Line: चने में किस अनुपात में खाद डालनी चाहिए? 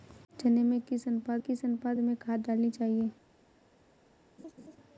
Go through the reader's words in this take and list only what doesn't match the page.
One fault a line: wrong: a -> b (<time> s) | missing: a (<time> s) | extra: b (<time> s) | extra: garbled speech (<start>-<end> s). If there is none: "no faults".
extra: किस अनुपात (1.4 s)